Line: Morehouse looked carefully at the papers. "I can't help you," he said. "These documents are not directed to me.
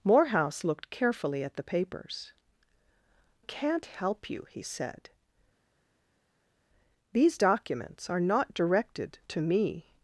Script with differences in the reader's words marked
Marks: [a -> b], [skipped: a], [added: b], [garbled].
Morehouse looked carefully at the papers. [skipped: "I] can't help you," he said. "These documents are not directed to me.